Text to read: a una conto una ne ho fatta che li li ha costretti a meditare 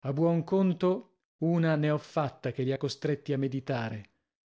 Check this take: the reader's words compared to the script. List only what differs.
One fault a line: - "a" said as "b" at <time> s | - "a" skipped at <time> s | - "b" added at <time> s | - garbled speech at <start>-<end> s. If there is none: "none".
- "una" said as "buon" at 0.1 s
- "li" skipped at 2.7 s